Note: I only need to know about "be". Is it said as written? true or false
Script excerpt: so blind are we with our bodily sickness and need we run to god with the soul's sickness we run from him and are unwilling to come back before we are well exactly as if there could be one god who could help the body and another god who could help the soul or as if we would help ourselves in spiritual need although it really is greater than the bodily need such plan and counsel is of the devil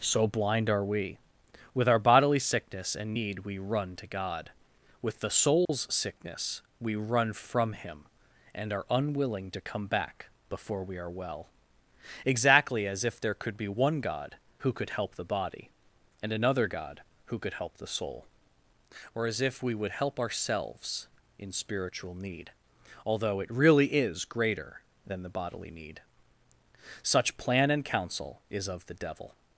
true